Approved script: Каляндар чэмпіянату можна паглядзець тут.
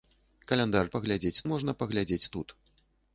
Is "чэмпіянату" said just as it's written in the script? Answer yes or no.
no